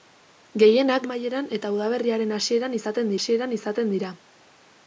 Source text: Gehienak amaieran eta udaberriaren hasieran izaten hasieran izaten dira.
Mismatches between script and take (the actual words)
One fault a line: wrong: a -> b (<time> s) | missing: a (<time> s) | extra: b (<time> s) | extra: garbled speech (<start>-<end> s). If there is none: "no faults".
no faults